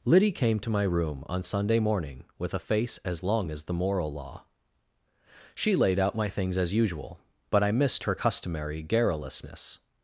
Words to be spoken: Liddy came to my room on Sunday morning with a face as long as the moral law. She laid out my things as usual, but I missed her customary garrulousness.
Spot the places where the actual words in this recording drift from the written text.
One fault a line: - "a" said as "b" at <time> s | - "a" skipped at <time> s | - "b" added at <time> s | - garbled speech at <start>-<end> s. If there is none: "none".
none